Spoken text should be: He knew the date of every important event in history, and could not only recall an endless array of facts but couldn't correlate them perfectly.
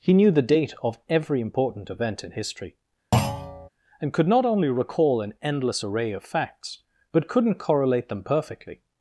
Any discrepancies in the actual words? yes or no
no